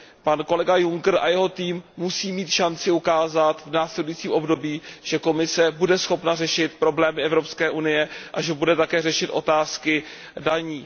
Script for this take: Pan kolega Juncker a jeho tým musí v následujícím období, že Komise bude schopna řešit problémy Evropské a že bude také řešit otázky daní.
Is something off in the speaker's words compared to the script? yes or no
yes